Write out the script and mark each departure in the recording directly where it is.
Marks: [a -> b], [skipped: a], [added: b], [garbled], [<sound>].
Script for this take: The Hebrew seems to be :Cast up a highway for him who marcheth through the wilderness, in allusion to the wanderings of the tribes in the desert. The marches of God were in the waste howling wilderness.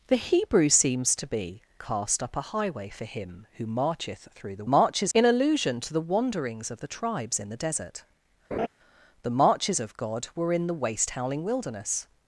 The Hebrew seems to be :Cast up a highway for him who marcheth through the [wilderness, -> marches] in allusion to the wanderings of the tribes in the desert. [laugh] The marches of God were in the waste howling wilderness.